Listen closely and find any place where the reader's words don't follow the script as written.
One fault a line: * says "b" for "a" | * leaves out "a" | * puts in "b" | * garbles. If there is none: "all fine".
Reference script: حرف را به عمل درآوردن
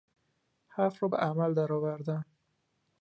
all fine